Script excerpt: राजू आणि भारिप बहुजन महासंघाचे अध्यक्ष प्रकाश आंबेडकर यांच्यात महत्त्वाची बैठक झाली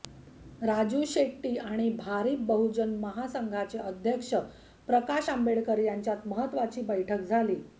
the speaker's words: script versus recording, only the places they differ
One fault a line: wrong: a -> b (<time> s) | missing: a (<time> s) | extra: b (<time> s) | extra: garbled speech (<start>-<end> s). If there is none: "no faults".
extra: शेट्टी (1.1 s)